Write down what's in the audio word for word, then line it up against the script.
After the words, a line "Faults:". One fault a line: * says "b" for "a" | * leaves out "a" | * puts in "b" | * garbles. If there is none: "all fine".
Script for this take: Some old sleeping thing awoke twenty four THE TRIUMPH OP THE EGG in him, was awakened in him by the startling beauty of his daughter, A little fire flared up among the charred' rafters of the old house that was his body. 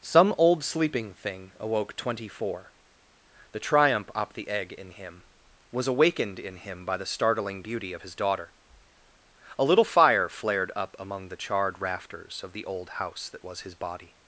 Some old sleeping thing awoke twenty four THE TRIUMPH OP THE EGG in him, was awakened in him by the startling beauty of his daughter, A little fire flared up among the charred' rafters of the old house that was his body.
Faults:
all fine